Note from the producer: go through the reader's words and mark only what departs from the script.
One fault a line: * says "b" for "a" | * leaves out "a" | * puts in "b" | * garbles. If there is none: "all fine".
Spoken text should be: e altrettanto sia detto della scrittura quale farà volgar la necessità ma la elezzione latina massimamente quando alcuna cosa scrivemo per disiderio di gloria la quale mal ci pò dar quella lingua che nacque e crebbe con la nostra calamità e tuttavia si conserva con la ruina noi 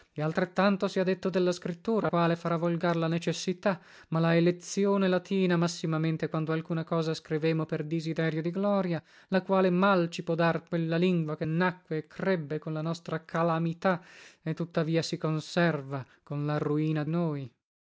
all fine